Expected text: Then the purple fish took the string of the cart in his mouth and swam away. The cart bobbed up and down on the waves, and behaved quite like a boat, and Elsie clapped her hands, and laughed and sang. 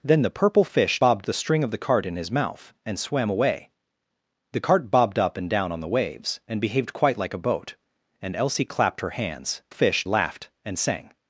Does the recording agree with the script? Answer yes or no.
no